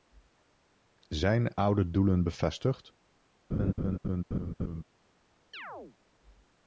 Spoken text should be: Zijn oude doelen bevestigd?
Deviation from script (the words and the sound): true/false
true